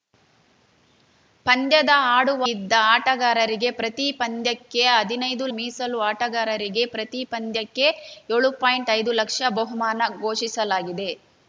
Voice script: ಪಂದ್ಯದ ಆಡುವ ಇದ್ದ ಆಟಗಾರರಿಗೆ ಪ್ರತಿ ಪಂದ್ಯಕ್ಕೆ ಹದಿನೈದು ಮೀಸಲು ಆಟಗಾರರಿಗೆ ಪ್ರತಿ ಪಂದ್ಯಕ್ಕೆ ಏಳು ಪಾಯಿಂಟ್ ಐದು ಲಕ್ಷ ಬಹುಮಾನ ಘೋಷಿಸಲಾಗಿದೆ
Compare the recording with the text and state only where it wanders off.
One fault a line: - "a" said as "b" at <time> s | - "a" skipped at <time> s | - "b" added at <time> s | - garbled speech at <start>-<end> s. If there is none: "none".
none